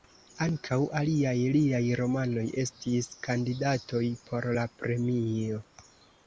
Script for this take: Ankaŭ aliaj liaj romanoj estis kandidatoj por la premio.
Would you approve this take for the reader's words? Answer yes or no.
yes